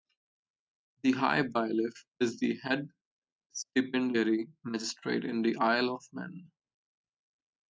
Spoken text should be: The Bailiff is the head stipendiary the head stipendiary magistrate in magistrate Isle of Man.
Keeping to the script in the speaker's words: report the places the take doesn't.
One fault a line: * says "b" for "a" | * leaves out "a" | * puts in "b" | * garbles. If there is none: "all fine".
* puts in "High"
* leaves out "the head stipendiary"
* says "the" for "magistrate"